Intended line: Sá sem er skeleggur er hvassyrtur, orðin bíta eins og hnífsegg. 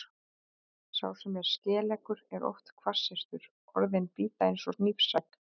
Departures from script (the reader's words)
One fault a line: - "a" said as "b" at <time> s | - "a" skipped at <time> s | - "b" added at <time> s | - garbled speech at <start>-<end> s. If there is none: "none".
- "oft" added at 2.5 s